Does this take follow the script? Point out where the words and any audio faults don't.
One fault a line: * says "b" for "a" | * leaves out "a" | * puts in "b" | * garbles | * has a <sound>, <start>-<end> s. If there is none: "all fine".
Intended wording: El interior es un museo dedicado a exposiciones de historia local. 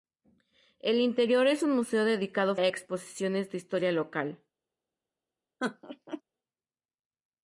* has a laugh, 5.6-6.2 s